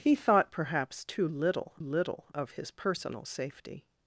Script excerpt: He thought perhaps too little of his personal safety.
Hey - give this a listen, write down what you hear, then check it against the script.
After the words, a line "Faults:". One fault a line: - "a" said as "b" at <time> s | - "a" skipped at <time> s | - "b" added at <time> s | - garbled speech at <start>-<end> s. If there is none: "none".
He thought perhaps too little little of his personal safety.
Faults:
- "little" added at 1.8 s